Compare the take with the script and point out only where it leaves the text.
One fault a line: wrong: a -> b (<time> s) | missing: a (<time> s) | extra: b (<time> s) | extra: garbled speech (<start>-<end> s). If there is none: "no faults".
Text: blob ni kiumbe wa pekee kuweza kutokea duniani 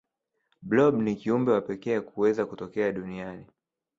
no faults